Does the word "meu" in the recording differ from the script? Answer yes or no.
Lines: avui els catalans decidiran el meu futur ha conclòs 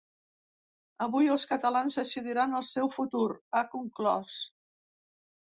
yes